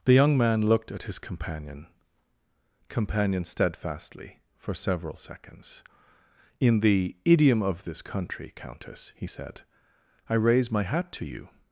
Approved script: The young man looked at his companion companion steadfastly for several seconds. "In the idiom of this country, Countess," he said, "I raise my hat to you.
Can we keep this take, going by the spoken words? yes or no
yes